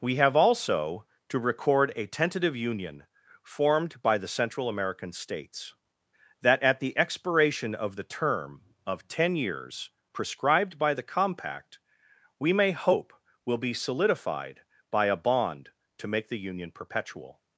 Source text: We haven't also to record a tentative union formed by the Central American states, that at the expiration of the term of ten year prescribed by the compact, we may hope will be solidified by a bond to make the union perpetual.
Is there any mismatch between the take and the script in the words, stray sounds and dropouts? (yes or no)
yes